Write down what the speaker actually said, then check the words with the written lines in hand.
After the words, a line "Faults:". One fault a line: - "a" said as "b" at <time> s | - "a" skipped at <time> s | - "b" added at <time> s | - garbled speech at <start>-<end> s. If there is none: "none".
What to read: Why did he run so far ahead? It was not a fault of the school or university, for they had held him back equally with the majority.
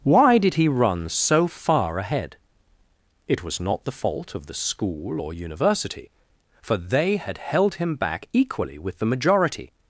Why did he run so far ahead? It was not the fault of the school or university, for they had held him back equally with the majority.
Faults:
- "a" said as "the" at 3.8 s